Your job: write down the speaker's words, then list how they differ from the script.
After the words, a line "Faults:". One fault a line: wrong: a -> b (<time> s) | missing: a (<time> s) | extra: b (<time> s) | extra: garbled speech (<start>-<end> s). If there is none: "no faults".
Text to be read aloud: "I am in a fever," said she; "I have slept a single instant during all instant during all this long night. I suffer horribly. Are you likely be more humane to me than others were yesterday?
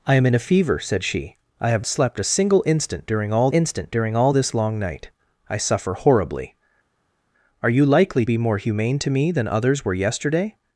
"I am in a fever," said she; "I have slept a single instant during all instant during all this long night. I suffer horribly. Are you likely be more humane to me than others were yesterday?
Faults:
no faults